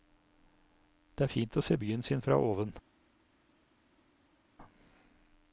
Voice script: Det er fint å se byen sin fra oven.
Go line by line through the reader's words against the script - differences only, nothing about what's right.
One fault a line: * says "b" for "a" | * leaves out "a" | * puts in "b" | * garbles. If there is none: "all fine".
all fine